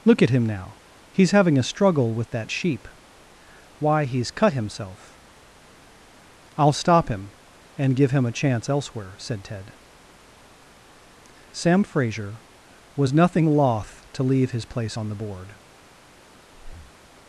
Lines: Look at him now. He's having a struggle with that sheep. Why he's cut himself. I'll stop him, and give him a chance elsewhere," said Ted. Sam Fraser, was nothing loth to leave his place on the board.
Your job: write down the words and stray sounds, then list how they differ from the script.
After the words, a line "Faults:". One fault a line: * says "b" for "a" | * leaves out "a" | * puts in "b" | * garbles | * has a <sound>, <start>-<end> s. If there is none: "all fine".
Look at him now. He's having a struggle with that sheep. Why he's cut himself. I'll stop him, and give him a chance elsewhere," said Ted. Sam Fraser, was nothing loth to leave his place on the board.
Faults:
* has a breath, 16.5-17.0 s